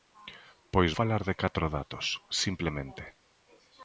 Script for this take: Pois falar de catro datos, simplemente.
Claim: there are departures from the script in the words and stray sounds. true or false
false